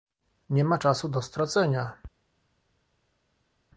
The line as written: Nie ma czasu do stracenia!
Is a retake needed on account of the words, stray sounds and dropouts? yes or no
no